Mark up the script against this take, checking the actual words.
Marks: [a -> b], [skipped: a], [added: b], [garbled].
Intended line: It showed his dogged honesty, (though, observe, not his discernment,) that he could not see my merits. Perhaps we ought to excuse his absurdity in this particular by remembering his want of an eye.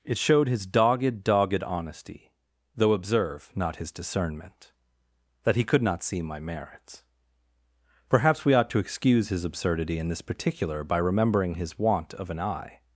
It showed his dogged [added: dogged] honesty, (though, observe, not his discernment,) that he could not see my merits. Perhaps we ought to excuse his absurdity in this particular by remembering his want of an eye.